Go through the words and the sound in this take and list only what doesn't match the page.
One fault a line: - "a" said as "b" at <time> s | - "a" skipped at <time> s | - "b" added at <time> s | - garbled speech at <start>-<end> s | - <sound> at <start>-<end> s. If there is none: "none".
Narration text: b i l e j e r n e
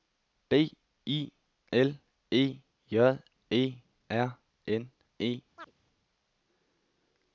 - chirp at 5.6-5.7 s